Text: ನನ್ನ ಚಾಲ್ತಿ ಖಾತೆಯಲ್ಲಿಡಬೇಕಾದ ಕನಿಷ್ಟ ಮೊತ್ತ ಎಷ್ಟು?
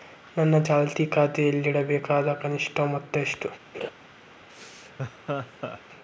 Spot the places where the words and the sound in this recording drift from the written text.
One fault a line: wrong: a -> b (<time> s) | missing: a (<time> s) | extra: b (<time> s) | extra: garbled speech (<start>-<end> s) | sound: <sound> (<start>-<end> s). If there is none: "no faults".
sound: laugh (3.7-3.9 s)
sound: laugh (4.5-5.8 s)